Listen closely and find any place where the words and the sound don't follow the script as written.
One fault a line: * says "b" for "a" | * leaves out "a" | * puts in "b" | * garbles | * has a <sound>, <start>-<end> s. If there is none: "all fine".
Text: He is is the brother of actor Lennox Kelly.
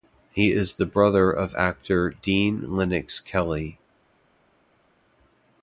* leaves out "is"
* puts in "Dean"